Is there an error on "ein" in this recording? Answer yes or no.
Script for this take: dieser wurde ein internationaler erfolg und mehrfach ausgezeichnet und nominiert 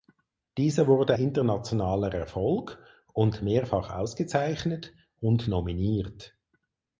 yes